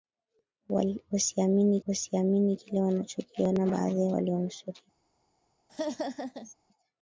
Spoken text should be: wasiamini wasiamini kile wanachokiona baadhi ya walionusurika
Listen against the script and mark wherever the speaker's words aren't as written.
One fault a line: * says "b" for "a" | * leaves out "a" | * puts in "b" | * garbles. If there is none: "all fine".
all fine